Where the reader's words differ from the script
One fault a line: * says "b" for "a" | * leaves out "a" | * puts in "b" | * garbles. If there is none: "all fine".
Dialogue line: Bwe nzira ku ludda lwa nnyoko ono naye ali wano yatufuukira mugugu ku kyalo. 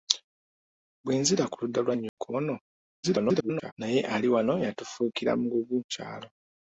* garbles
* leaves out "ku"